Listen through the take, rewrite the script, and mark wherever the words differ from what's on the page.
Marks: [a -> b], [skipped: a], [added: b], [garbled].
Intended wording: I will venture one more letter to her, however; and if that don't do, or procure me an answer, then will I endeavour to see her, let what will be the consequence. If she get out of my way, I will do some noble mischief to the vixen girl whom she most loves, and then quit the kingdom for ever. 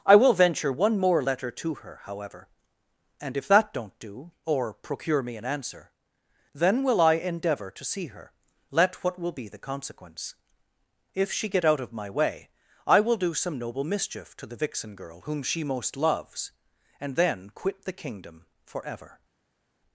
I will venture one more letter to her, however; and if that don't do, or procure me an answer, then will I endeavour to see her, let what will be the consequence. If she get out of my way, I will do some noble mischief to the vixen girl whom she most loves, and then quit the kingdom for ever.